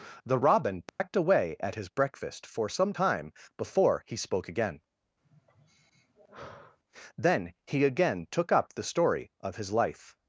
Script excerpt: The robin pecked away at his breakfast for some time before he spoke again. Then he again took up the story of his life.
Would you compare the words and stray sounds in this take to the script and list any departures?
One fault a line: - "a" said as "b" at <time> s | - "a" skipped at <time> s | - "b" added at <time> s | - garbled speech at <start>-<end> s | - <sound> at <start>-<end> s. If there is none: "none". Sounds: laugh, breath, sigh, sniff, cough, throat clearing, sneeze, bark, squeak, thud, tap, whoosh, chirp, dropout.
- dropout at 0.9-1.0 s
- sigh at 5.2-6.8 s